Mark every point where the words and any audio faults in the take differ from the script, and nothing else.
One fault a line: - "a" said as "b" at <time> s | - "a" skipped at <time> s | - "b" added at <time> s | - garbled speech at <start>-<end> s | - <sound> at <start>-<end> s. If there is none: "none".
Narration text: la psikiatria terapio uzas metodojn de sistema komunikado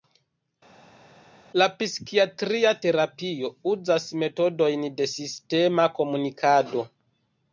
none